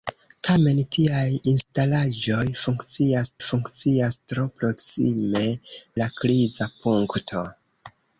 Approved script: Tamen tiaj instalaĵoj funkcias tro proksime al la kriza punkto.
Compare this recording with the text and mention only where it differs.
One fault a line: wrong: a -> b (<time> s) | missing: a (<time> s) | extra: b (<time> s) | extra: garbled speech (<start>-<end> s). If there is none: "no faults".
extra: funkcias (3.5 s)
missing: al (5.4 s)